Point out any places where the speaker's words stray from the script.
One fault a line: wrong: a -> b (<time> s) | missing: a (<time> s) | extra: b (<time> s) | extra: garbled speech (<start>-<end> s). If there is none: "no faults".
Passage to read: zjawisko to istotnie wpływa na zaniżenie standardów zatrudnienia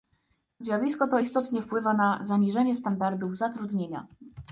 no faults